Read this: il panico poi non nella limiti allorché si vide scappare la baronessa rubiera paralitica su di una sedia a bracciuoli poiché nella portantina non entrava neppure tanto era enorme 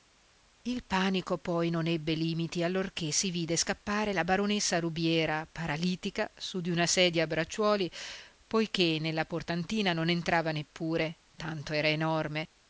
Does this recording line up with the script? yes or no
no